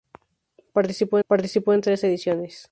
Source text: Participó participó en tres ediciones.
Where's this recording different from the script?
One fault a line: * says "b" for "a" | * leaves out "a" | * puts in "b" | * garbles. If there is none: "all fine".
all fine